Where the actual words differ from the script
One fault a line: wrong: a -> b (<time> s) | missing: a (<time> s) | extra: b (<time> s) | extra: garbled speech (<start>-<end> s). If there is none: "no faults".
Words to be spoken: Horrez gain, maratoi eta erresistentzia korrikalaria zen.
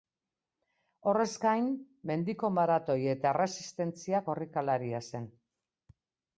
extra: mendiko (2.1 s)